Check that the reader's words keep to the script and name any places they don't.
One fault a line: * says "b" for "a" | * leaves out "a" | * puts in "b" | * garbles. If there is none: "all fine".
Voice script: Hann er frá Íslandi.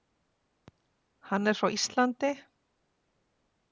all fine